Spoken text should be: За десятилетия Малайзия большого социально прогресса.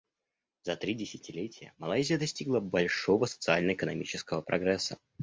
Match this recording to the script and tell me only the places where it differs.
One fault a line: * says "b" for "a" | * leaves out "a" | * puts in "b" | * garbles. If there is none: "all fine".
* puts in "три"
* puts in "достигла"
* puts in "экономического"